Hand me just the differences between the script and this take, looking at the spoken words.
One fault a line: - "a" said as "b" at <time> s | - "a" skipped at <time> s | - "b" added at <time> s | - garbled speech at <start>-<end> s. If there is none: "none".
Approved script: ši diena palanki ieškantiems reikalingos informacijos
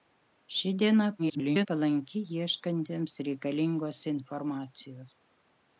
- garbled speech at 1.2-1.7 s